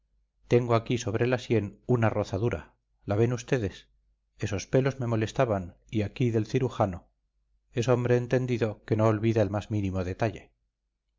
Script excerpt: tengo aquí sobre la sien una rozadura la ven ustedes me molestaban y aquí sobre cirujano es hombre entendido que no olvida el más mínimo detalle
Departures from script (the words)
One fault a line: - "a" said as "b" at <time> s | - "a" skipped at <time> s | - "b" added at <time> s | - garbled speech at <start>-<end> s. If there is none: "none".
- "esos pelos" added at 4.4 s
- "sobre" said as "del" at 6.3 s